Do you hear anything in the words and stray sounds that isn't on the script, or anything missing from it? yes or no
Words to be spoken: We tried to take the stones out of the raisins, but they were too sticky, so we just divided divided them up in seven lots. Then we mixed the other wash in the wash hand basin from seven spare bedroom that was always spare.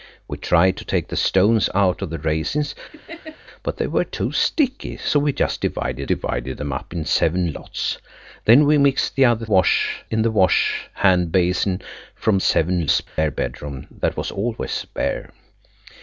yes